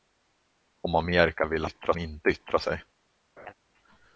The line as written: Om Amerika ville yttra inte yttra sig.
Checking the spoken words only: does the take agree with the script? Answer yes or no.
yes